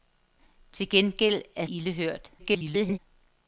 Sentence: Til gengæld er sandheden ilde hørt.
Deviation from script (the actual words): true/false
true